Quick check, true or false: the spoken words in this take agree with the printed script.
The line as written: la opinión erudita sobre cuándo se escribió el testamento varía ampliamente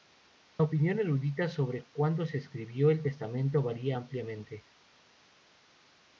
true